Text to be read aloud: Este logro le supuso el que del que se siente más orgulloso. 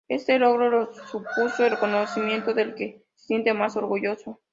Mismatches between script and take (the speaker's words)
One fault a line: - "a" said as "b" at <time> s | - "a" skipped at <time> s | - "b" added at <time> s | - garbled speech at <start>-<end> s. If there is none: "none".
- "que" said as "reconocimiento" at 1.7 s